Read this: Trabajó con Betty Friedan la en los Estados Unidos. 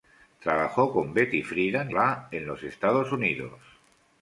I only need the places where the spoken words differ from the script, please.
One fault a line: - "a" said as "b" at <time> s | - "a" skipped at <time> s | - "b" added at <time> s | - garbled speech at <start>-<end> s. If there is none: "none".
none